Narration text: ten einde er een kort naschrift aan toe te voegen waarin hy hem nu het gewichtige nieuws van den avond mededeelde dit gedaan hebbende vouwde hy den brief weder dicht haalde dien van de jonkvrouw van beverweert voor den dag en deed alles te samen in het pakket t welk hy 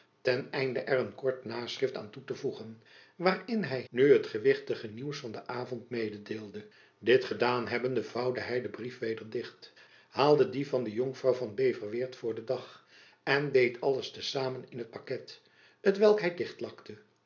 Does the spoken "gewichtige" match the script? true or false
true